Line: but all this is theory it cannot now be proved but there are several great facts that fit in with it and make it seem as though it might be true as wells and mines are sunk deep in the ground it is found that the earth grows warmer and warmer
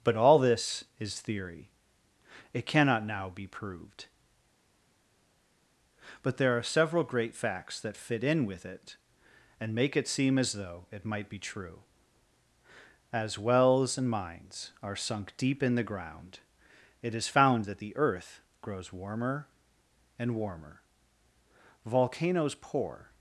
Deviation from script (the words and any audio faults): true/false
true